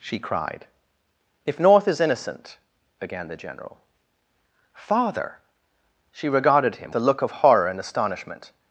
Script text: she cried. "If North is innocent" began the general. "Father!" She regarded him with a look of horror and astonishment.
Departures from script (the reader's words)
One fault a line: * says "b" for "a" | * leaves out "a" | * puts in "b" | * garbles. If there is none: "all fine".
* leaves out "with"